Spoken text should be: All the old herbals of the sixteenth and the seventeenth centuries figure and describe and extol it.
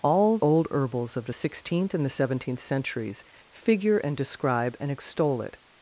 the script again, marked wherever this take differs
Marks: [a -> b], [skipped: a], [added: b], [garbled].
All [skipped: the] old herbals of the sixteenth and the seventeenth centuries figure and describe and extol it.